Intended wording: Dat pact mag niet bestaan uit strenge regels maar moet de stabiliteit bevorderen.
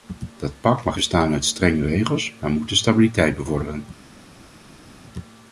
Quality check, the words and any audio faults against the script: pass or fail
fail